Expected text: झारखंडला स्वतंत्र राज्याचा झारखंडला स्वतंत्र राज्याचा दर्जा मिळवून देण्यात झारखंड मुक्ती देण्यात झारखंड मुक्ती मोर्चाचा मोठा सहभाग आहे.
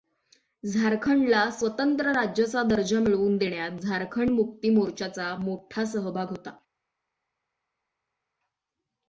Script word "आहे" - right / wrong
wrong